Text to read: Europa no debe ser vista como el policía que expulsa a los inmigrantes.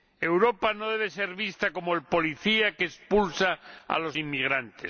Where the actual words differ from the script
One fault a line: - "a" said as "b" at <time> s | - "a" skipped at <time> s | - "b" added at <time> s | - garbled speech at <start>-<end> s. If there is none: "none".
none